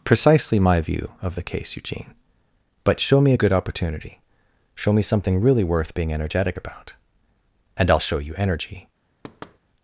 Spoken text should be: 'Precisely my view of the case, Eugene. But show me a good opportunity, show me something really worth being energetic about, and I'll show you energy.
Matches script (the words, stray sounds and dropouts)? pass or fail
fail